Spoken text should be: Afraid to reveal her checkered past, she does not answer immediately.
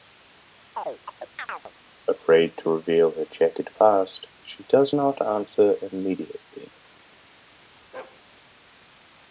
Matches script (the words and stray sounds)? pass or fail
fail